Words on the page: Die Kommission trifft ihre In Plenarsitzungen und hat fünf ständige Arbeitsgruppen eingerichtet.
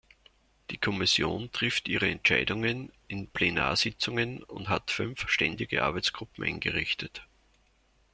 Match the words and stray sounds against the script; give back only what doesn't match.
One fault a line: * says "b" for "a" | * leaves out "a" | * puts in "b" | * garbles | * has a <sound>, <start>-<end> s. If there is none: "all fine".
* puts in "Entscheidungen"